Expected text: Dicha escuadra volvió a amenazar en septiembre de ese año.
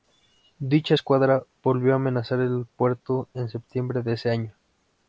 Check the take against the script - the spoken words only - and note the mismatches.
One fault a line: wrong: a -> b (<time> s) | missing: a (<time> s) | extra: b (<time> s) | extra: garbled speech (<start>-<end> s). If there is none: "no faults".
extra: el puerto (2.4 s)